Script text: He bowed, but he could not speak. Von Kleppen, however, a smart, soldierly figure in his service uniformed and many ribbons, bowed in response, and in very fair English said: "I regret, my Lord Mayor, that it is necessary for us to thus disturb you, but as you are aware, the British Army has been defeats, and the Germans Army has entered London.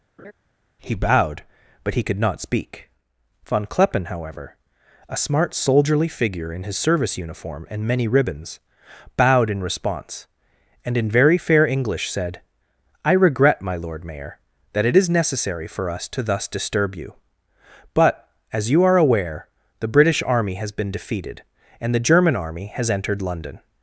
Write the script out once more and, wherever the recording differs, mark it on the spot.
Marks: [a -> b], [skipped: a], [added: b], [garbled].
He bowed, but he could not speak. Von Kleppen, however, a smart, soldierly figure in his service [uniformed -> uniform] and many ribbons, bowed in response, and in very fair English said: "I regret, my Lord Mayor, that it is necessary for us to thus disturb you, but as you are aware, the British Army has been [defeats, -> defeated] and the [Germans -> German] Army has entered London.